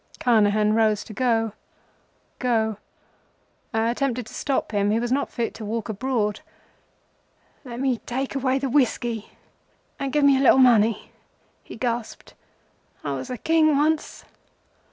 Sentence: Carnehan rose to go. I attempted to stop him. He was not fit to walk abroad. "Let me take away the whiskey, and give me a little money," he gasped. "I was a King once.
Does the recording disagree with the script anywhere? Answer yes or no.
yes